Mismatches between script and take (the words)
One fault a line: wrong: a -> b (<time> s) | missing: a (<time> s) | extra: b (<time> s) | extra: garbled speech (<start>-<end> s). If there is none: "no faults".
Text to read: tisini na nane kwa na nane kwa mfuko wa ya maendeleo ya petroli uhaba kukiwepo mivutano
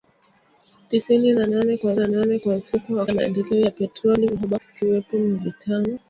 no faults